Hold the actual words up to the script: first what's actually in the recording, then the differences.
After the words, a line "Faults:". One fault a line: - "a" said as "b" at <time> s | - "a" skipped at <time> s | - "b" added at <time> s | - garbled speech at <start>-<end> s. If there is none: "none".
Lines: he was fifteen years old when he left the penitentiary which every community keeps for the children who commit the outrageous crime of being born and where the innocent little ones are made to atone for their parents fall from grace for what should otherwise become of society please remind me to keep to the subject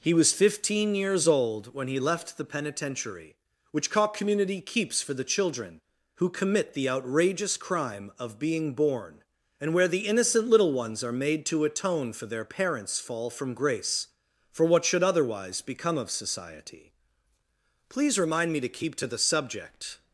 he was fifteen years old when he left the penitentiary which cock community keeps for the children who commit the outrageous crime of being born and where the innocent little ones are made to atone for their parents fall from grace for what should otherwise become of society please remind me to keep to the subject
Faults:
- "every" said as "cock" at 3.9 s